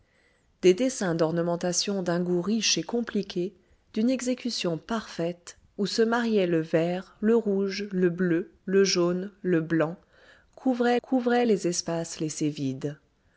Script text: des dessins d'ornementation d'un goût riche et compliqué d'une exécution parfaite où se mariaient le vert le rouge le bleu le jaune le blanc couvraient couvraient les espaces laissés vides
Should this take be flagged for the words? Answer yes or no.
no